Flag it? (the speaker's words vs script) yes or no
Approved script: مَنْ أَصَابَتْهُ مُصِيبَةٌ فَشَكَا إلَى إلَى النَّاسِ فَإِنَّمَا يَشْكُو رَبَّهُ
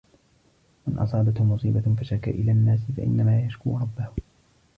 yes